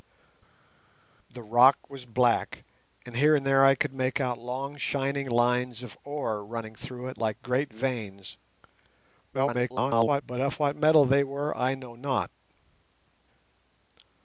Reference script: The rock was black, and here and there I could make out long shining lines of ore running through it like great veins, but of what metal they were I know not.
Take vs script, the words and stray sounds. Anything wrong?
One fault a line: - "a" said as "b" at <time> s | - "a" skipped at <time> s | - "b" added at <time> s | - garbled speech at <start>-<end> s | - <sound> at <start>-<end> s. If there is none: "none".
- garbled speech at 9.3-10.2 s